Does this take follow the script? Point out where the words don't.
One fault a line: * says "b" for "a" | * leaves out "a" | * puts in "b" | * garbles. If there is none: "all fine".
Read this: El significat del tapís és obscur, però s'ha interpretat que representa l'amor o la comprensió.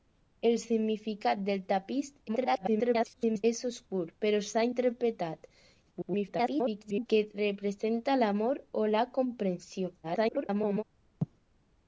* garbles
* garbles
* garbles